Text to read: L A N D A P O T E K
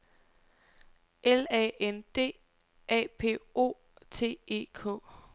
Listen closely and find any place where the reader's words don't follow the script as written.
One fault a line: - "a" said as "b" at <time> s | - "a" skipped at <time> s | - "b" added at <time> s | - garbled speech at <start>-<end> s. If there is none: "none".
none